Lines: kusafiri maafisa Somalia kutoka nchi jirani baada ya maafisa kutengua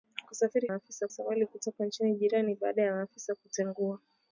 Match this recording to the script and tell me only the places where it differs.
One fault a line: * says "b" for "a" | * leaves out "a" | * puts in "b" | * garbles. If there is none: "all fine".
all fine